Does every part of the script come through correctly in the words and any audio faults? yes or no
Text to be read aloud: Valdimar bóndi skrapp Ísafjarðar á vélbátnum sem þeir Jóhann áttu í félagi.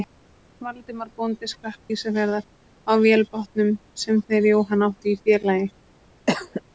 no